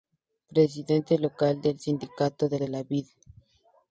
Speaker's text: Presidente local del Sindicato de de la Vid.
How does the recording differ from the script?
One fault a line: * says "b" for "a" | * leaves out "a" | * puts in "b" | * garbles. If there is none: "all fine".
all fine